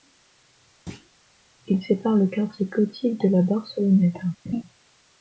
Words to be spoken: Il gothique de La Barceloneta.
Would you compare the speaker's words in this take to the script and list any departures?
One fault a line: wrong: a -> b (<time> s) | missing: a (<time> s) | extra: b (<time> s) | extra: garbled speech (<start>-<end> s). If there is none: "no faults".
extra: sépare le quartier (1.8 s)